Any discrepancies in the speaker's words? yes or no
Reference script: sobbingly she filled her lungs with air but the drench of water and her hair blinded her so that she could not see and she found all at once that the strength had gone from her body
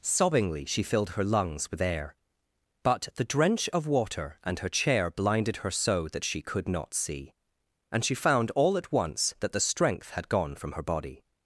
yes